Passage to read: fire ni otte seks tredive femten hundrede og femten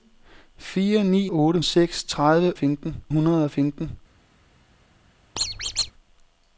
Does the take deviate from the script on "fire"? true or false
false